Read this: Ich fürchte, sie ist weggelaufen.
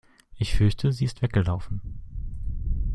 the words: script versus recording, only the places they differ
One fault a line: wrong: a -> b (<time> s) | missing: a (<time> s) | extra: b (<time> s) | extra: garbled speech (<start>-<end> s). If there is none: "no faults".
no faults